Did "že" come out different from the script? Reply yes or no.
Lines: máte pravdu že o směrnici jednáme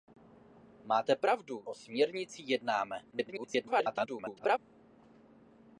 yes